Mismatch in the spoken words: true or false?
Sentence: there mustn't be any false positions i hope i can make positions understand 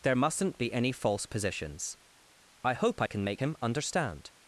true